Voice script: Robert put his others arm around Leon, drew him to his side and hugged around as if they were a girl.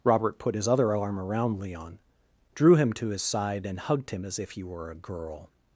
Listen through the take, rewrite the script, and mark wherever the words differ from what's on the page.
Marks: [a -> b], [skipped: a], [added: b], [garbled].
Robert put his [others -> other] arm around Leon, drew him to his side and hugged [around -> him] as if [they -> he] were a girl.